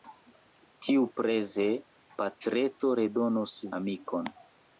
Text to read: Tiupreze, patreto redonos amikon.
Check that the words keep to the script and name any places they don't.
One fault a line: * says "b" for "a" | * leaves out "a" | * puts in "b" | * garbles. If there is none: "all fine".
all fine